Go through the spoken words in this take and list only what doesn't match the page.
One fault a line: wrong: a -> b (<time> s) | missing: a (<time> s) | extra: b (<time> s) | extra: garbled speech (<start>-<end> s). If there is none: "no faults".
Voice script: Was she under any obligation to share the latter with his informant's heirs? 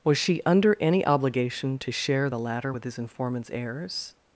no faults